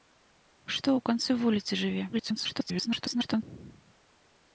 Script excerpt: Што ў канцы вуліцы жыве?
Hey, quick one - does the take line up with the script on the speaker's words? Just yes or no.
no